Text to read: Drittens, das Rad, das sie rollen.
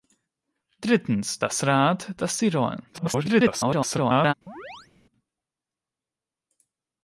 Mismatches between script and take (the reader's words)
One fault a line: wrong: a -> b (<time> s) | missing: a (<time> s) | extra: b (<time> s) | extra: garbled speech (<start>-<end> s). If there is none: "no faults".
extra: garbled speech (2.9-4.3 s)